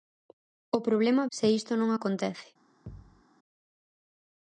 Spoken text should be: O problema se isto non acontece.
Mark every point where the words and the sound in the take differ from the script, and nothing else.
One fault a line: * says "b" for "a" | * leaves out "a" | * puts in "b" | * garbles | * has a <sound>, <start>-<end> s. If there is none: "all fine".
* has a thud, 2.9-3.2 s